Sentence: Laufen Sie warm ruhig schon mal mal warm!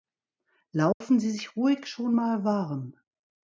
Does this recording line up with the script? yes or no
no